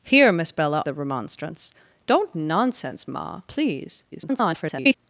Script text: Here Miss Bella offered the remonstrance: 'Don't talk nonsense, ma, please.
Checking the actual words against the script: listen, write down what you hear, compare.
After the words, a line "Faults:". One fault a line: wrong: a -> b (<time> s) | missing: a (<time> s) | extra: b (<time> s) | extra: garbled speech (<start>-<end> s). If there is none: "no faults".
Here Miss Bella the remonstrance: 'Don't nonsense, ma, please. [garbled]
Faults:
missing: offered (0.8 s)
missing: talk (2.3 s)
extra: garbled speech (4.1-5.0 s)